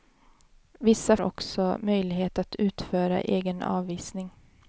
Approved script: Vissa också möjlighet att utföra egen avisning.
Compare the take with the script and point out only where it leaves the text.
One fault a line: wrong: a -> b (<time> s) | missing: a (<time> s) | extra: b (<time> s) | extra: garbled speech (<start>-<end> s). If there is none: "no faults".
no faults